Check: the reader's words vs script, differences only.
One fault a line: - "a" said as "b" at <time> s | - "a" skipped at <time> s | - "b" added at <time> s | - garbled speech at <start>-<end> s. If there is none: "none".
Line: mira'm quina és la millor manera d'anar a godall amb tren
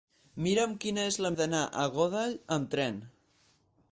- "millor manera" skipped at 1.3 s